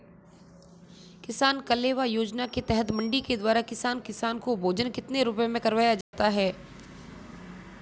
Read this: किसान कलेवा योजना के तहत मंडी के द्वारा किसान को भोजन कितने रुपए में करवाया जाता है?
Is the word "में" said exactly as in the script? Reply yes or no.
yes